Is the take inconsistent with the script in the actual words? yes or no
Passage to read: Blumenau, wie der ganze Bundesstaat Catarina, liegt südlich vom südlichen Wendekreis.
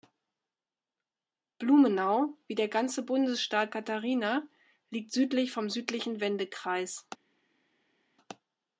no